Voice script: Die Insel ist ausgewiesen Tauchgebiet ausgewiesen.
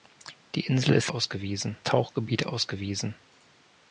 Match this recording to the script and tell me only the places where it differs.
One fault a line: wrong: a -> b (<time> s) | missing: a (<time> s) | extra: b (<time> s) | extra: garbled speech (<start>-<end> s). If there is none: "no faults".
no faults